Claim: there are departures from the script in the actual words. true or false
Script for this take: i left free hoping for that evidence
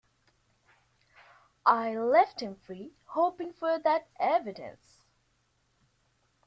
true